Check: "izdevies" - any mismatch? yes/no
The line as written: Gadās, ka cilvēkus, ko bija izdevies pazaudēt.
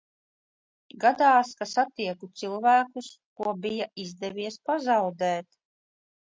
no